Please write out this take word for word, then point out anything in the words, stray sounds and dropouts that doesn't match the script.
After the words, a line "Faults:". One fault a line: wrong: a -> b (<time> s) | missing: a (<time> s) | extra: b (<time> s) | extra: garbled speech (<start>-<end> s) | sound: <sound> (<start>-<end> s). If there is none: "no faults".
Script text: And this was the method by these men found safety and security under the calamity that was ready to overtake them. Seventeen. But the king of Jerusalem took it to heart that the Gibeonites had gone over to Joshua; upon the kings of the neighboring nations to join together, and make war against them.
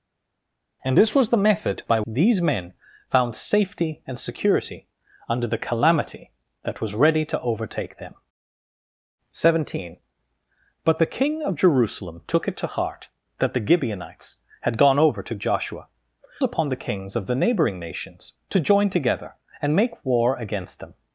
And this was the method by these men found safety and security under the calamity that was ready to overtake them. Seventeen. But the king of Jerusalem took it to heart that the Gibeonites had gone over to Joshua; upon the kings of the neighboring nations to join together, and make war against them.
Faults:
no faults